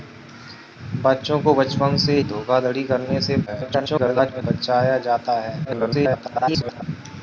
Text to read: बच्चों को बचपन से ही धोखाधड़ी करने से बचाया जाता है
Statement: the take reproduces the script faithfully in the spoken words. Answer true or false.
false